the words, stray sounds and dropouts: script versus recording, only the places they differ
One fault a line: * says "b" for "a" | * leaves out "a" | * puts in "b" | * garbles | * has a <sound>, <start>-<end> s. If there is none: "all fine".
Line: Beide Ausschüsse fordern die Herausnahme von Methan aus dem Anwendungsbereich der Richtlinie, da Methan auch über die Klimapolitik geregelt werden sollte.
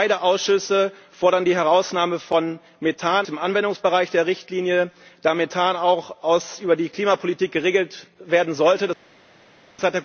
* leaves out "aus"